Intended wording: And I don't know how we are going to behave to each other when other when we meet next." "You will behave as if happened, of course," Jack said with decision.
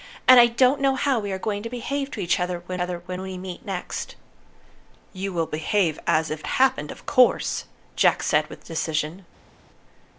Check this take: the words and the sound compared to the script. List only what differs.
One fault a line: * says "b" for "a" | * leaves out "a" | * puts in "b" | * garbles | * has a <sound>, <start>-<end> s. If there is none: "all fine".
all fine